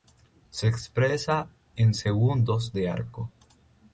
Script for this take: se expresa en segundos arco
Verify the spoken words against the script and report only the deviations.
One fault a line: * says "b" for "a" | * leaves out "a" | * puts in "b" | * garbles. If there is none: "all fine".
* puts in "de"